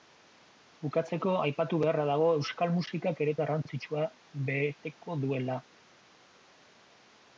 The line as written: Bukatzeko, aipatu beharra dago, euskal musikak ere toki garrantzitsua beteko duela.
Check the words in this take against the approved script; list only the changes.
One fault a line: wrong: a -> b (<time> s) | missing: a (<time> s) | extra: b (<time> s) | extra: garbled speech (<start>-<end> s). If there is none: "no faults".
missing: toki (3.4 s)